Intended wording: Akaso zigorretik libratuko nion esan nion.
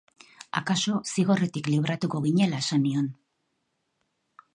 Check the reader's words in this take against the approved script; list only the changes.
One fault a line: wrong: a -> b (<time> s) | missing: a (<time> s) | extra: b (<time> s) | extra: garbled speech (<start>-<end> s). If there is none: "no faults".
wrong: nion -> ginela (2.3 s)